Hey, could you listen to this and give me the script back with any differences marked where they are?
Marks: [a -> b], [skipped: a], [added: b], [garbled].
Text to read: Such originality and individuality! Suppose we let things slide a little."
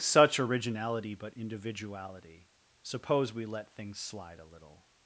Such originality [and -> but] individuality! Suppose we let things slide a little."